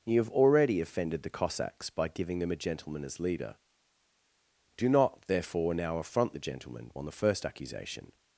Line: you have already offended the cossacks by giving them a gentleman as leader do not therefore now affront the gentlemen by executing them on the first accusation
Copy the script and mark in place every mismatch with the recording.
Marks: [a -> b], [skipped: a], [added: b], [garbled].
you have already offended the cossacks by giving them a gentleman as leader do not therefore now affront the gentlemen [skipped: by executing them] on the first accusation